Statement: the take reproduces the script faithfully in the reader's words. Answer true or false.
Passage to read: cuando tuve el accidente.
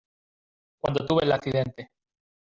true